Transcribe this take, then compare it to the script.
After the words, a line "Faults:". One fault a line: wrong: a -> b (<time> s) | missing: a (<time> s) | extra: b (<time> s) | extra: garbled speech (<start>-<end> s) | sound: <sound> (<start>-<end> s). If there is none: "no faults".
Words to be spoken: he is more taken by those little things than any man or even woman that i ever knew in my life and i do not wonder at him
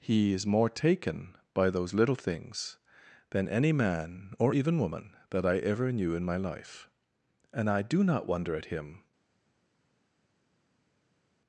he is more taken by those little things than any man or even woman that i ever knew in my life and i do not wonder at him
Faults:
no faults